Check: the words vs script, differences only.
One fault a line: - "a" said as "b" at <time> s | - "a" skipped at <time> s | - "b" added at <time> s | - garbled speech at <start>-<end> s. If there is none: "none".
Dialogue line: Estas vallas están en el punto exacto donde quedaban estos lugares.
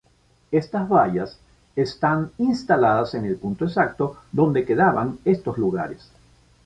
- "instaladas" added at 2.4 s